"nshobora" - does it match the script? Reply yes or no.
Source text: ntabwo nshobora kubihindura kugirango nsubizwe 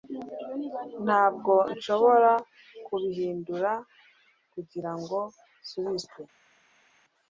yes